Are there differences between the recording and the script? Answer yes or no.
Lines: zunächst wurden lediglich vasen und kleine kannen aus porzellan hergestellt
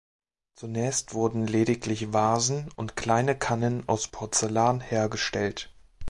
no